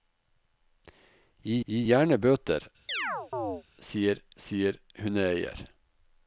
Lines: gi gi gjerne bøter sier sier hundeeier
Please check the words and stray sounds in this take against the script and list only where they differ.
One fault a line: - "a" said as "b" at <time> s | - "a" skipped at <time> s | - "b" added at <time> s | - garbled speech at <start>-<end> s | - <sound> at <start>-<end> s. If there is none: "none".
- chirp at 2.9-3.6 s